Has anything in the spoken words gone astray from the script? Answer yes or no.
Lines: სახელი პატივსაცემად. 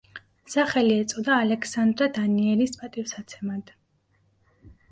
yes